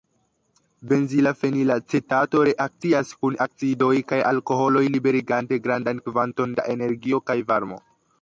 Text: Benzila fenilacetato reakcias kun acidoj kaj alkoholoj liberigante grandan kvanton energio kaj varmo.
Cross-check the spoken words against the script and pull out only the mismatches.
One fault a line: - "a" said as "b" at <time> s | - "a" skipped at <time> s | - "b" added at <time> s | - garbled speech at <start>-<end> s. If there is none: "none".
- "da" added at 6.6 s